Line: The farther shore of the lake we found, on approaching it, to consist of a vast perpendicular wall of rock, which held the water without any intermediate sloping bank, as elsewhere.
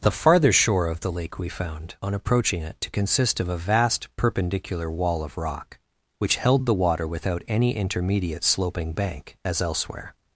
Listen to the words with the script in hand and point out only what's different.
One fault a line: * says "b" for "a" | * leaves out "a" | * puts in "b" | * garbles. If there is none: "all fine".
all fine